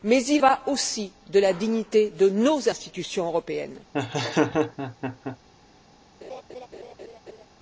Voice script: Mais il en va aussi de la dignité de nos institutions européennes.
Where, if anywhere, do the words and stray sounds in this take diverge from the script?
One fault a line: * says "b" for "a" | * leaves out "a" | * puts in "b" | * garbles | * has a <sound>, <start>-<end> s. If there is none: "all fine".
* leaves out "en"
* has a laugh, 3.9-5.4 s
* has a laugh, 6.2-7.5 s